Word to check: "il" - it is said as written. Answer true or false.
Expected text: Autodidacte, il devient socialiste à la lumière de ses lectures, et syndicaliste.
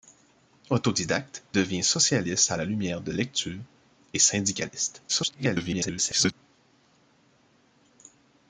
false